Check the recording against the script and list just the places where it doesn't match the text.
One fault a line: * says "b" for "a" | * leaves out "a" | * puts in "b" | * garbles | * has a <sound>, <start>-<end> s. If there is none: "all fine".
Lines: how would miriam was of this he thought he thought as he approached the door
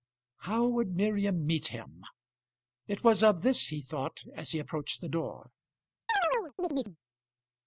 * puts in "meet him it"
* leaves out "he thought"
* has a chirp, 6.1-7.0 s